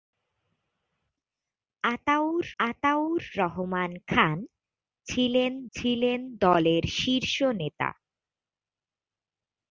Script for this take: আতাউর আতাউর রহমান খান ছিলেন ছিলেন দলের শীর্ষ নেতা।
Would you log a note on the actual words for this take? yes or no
no